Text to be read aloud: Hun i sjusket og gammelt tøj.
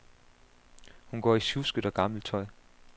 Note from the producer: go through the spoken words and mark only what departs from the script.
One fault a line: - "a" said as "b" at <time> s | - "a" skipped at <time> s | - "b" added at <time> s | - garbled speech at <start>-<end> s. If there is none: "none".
- "går" added at 1.2 s